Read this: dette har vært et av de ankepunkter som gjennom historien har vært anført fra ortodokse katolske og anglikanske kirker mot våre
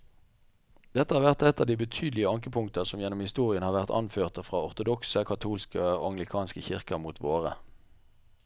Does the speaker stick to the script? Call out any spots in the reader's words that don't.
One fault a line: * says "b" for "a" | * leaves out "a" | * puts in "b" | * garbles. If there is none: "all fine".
* puts in "betydelige"